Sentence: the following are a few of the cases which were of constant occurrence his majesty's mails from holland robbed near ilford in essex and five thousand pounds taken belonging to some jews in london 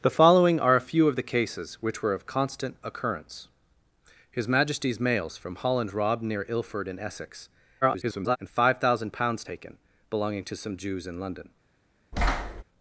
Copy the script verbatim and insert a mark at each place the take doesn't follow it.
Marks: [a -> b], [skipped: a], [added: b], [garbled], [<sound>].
the following are a few of the cases which were of constant occurrence his majesty's mails from holland robbed near ilford in essex [garbled] and five thousand pounds taken belonging to some jews in london [thud]